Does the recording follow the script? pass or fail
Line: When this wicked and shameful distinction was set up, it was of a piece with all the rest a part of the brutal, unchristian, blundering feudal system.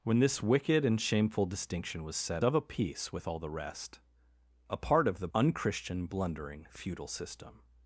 fail